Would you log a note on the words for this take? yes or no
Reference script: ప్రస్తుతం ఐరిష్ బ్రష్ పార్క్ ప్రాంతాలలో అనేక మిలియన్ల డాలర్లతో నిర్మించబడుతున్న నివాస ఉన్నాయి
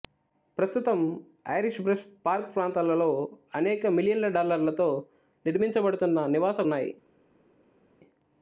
no